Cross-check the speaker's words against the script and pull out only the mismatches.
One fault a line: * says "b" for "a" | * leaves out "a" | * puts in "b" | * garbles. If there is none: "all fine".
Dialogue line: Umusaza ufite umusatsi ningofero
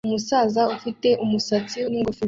all fine